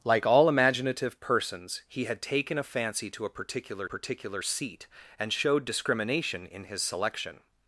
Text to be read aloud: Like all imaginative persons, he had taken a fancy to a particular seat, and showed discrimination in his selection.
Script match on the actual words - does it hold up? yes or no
no